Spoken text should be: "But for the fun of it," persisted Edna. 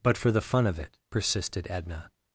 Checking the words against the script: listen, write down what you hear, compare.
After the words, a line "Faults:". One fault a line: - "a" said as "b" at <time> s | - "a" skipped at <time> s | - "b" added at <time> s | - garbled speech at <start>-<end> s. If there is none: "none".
"But for the fun of it," persisted Edna.
Faults:
none